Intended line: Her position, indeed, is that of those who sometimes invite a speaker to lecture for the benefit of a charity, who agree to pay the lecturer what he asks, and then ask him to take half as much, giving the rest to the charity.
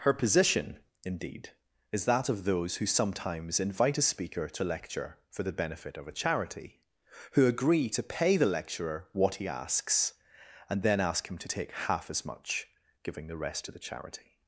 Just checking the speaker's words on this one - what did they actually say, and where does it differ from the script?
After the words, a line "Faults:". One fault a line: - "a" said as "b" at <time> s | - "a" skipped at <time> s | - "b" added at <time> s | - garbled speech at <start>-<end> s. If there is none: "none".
Her position, indeed, is that of those who sometimes invite a speaker to lecture for the benefit of a charity, who agree to pay the lecturer what he asks, and then ask him to take half as much, giving the rest to the charity.
Faults:
none